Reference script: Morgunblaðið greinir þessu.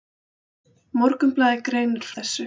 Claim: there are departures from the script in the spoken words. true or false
false